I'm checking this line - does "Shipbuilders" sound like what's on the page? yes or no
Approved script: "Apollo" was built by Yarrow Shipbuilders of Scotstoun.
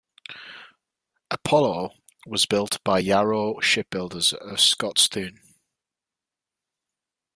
yes